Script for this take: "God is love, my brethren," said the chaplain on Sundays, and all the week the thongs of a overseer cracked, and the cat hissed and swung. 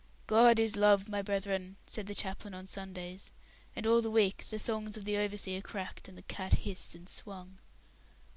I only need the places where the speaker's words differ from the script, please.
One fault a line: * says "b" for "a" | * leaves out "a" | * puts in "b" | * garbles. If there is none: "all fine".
* says "the" for "a"